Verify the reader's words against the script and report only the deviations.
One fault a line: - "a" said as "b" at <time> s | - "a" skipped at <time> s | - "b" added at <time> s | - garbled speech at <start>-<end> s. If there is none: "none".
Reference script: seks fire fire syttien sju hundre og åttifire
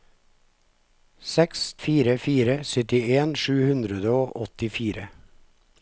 none